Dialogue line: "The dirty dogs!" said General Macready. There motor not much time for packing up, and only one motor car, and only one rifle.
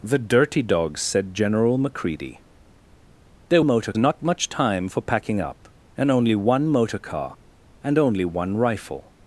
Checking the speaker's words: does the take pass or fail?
pass